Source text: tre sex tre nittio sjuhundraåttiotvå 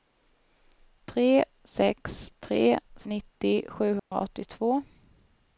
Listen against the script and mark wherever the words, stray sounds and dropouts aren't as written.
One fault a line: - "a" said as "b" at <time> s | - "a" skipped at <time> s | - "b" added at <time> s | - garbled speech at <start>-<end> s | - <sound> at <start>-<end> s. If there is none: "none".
- dropout at 4.0-4.1 s